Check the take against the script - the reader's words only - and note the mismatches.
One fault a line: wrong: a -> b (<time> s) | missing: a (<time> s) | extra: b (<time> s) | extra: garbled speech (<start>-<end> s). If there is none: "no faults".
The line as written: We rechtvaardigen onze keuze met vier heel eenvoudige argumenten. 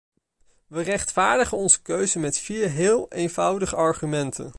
no faults